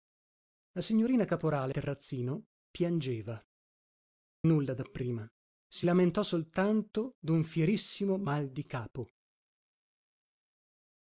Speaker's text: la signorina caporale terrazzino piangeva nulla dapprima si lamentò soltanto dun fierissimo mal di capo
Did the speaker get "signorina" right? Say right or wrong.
right